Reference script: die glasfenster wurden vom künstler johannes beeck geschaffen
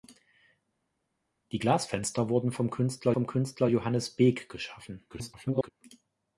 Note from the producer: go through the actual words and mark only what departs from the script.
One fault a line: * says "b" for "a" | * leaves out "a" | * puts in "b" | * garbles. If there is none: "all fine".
* puts in "vom künstler"
* garbles